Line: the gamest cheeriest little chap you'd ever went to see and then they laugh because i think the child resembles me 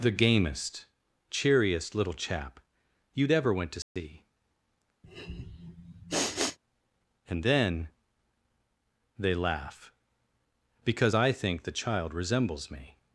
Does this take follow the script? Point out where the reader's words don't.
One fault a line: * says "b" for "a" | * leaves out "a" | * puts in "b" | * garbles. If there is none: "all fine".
all fine